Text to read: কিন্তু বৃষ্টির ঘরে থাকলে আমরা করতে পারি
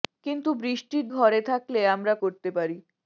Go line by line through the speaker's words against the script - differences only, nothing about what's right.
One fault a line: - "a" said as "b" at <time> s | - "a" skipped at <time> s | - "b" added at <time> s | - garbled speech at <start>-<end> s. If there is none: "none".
none